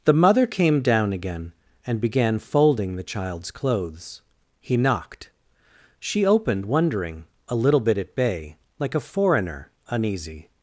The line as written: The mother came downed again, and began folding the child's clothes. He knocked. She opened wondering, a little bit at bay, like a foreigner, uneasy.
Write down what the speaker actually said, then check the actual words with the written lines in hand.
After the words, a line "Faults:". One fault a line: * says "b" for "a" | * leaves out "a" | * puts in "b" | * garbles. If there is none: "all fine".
The mother came down again, and began folding the child's clothes. He knocked. She opened wondering, a little bit at bay, like a foreigner, uneasy.
Faults:
* says "down" for "downed"